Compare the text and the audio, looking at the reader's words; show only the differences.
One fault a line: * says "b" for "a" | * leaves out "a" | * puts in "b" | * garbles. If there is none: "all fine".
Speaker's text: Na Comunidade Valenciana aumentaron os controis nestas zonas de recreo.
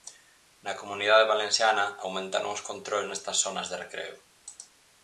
all fine